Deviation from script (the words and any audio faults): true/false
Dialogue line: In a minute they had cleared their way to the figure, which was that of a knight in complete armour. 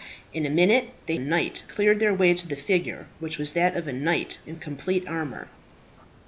true